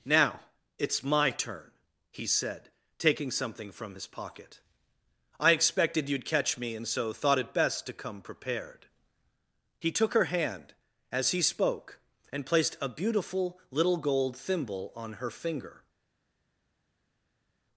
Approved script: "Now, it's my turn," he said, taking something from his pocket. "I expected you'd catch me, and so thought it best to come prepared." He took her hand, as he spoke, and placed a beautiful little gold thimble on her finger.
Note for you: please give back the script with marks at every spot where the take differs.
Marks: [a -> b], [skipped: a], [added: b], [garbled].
"Now, it's my turn," he said, taking something from his pocket. "I expected you'd catch me, and so thought it best to come prepared." He took her hand, as he spoke, and placed a beautiful little gold thimble on her finger.